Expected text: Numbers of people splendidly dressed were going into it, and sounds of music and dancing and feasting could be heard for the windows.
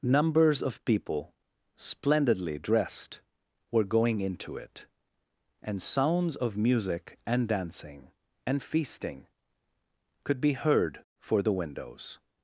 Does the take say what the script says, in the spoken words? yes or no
yes